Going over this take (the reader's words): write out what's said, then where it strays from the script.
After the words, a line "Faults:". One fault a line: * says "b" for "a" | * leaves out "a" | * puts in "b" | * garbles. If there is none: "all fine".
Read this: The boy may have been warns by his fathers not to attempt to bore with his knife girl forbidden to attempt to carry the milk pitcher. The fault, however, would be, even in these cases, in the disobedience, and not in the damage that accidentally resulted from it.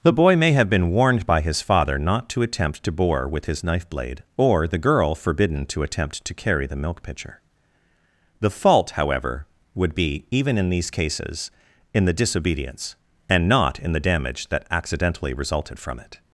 The boy may have been warned by his father not to attempt to bore with his knife blade, or the girl forbidden to attempt to carry the milk pitcher. The fault, however, would be, even in these cases, in the disobedience, and not in the damage that accidentally resulted from it.
Faults:
* says "warned" for "warns"
* says "father" for "fathers"
* puts in "blade or the"